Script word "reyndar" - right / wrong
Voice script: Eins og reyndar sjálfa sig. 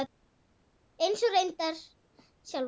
right